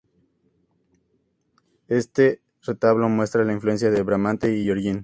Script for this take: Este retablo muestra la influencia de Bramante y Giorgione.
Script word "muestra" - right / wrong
right